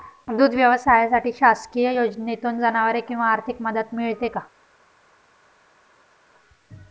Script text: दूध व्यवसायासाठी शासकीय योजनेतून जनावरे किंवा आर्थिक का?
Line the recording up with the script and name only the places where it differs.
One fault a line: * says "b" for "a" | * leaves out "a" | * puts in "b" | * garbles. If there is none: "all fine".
* puts in "मदत मिळते"